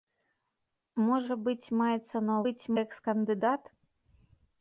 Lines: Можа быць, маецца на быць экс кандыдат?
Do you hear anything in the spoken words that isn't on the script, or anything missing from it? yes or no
no